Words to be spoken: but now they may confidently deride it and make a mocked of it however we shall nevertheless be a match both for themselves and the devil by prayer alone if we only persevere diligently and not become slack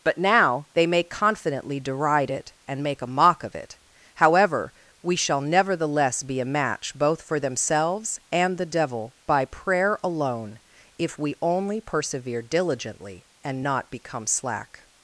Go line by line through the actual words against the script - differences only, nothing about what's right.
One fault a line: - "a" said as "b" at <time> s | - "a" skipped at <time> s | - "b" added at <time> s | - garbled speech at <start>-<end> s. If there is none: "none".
- "mocked" said as "mock" at 3.1 s